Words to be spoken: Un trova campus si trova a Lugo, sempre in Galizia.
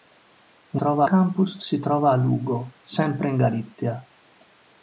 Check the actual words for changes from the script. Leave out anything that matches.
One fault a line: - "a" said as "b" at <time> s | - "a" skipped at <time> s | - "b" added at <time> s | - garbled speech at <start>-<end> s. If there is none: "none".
none